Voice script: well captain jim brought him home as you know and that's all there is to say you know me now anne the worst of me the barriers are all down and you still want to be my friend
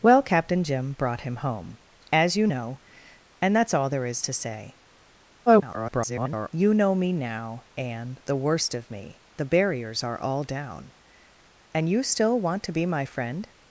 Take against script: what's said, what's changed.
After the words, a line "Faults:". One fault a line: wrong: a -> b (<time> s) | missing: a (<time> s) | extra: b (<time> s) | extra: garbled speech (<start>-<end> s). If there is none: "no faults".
well captain jim brought him home as you know and that's all there is to say [garbled] you know me now anne the worst of me the barriers are all down and you still want to be my friend
Faults:
extra: garbled speech (5.5-6.5 s)